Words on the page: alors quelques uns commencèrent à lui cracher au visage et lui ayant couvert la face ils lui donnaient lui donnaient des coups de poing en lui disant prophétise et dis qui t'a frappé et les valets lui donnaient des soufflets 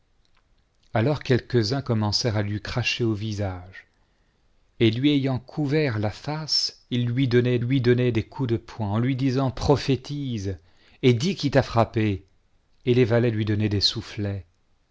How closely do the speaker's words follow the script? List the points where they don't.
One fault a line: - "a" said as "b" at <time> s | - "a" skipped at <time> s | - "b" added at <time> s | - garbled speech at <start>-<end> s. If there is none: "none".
none